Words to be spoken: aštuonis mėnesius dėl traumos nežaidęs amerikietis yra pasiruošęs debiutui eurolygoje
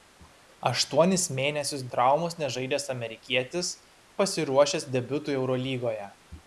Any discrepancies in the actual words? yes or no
yes